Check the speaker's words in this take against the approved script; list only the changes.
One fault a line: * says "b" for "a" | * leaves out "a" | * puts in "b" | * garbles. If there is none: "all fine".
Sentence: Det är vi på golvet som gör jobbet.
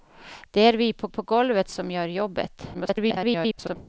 * puts in "på"
* garbles